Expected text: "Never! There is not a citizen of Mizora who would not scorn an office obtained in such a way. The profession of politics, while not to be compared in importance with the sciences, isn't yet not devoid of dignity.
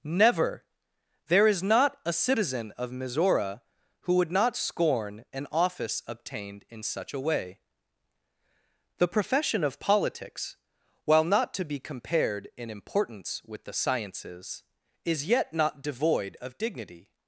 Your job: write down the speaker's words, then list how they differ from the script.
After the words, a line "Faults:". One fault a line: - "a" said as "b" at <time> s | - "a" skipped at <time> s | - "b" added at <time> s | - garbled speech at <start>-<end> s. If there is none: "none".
"Never! There is not a citizen of Mizora who would not scorn an office obtained in such a way. The profession of politics, while not to be compared in importance with the sciences, is yet not devoid of dignity.
Faults:
- "isn't" said as "is" at 15.0 s